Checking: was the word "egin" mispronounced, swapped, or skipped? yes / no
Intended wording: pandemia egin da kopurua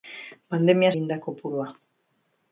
no